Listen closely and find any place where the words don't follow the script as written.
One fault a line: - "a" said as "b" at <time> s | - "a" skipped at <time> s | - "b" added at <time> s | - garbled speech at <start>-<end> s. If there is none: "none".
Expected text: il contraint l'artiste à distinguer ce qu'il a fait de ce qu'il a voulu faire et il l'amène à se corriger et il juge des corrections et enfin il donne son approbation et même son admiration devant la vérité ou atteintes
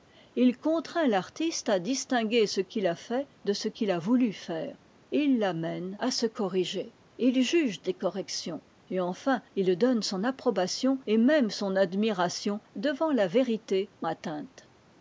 none